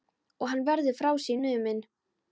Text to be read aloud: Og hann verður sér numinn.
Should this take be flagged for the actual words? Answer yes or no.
yes